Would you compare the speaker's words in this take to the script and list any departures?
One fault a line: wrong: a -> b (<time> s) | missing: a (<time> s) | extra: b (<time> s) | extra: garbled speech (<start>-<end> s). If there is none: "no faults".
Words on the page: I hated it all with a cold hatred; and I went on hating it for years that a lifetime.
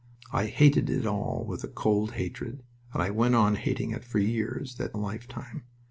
no faults